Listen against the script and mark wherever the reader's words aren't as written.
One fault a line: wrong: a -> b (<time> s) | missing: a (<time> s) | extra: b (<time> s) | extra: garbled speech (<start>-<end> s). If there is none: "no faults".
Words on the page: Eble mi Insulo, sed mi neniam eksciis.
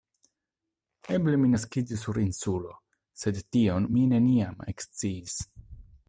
extra: naskiĝis sur (1.5 s)
extra: tion (3.6 s)